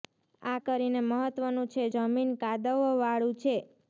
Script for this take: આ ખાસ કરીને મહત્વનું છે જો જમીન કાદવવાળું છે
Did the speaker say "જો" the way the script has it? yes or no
no